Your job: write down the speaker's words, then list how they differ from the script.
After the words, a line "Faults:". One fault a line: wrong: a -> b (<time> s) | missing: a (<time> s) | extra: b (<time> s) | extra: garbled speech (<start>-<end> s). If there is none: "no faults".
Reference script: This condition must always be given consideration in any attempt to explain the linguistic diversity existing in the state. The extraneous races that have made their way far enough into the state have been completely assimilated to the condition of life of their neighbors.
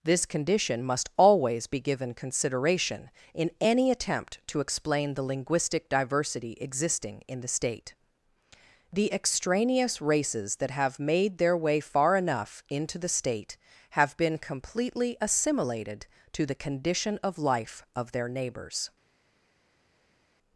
This condition must always be given consideration in any attempt to explain the linguistic diversity existing in the state. The extraneous races that have made their way far enough into the state have been completely assimilated to the condition of life of their neighbors.
Faults:
no faults